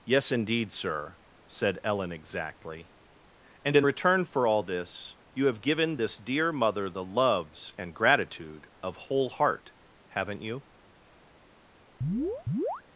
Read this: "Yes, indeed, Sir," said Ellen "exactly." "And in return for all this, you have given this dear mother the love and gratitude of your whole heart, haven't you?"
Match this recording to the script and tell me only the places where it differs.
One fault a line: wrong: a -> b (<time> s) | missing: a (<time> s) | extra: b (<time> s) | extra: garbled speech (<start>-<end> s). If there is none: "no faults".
wrong: love -> loves (7.0 s)
missing: your (9.0 s)